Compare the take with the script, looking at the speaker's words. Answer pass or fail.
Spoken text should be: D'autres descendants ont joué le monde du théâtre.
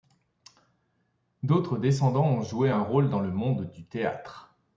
fail